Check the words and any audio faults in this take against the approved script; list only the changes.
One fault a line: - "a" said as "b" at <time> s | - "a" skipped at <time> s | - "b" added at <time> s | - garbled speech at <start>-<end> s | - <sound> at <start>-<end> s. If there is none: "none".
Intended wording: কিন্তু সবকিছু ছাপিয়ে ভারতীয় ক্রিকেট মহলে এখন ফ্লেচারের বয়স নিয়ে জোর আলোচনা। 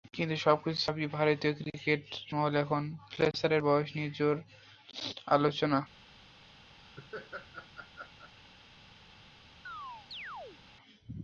- laugh at 6.8-8.3 s
- chirp at 9.7-10.6 s